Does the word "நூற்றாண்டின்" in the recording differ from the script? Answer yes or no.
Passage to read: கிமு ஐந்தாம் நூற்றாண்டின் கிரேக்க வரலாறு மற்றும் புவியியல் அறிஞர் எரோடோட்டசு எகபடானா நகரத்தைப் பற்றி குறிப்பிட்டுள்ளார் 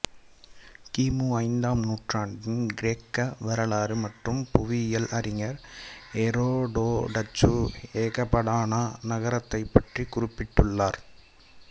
no